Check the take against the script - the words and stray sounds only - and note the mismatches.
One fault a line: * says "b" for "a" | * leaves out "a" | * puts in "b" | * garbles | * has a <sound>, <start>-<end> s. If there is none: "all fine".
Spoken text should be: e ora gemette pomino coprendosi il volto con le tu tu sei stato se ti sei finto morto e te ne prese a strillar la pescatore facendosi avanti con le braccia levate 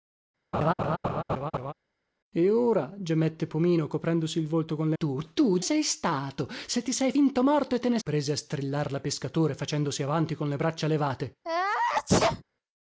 * has a laugh, 0.5-1.7 s
* has a sneeze, 11.4-12.4 s